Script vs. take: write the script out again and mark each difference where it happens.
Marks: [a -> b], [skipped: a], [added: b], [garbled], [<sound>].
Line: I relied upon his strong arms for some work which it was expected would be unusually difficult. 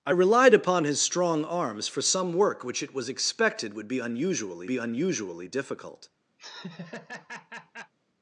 I relied upon his strong arms for some work which it was expected would be unusually [added: be unusually] difficult. [laugh]